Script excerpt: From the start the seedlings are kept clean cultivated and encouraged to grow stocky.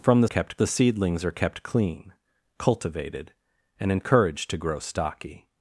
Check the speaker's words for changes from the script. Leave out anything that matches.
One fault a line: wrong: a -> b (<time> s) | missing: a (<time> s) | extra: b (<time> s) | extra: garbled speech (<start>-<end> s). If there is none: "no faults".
wrong: start -> kept (0.2 s)